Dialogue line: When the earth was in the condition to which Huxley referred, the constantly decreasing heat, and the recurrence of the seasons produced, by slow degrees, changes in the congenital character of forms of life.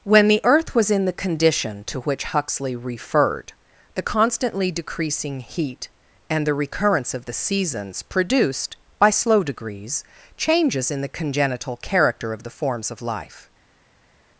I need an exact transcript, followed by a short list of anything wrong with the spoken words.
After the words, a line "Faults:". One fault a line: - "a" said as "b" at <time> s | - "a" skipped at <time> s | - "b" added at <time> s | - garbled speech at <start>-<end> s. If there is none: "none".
When the earth was in the condition to which Huxley referred, the constantly decreasing heat, and the recurrence of the seasons produced, by slow degrees, changes in the congenital character of the forms of life.
Faults:
- "the" added at 12.4 s